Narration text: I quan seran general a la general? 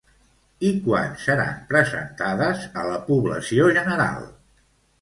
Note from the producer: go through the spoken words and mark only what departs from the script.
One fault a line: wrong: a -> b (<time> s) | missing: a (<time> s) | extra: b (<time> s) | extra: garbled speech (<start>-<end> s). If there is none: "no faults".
wrong: general -> presentades (1.7 s)
extra: població (3.1 s)